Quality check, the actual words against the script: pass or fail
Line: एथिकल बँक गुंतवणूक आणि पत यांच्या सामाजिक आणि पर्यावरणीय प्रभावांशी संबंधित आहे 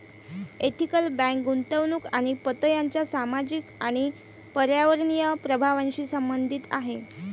pass